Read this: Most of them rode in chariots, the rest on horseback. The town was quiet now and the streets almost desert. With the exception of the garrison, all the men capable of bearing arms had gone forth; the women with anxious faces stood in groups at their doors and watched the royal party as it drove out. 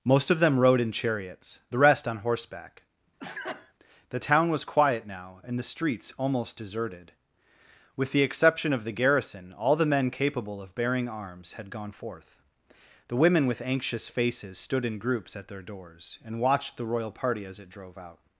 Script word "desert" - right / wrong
wrong